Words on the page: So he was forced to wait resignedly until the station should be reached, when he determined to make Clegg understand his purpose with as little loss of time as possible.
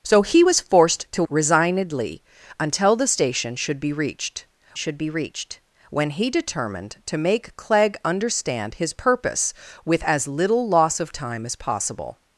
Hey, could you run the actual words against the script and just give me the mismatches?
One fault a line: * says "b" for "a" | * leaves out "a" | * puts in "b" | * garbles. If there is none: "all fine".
* leaves out "wait"
* puts in "should be reached"